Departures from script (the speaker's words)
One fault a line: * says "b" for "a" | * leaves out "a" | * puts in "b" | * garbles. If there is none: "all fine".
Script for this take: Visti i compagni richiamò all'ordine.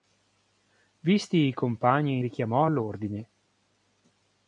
all fine